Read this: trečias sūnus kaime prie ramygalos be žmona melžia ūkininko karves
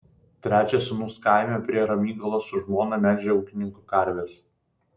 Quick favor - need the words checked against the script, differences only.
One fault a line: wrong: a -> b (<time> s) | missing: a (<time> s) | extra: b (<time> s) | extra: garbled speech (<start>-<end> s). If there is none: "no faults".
wrong: be -> su (2.5 s)